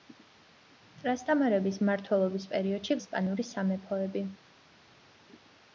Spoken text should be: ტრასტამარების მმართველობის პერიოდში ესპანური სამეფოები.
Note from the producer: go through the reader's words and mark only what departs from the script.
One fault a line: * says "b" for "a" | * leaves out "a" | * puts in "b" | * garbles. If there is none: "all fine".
all fine